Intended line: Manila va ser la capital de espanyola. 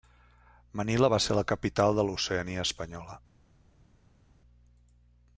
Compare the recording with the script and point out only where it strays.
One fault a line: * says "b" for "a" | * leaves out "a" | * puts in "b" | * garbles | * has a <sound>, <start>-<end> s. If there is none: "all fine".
* puts in "l'Oceania"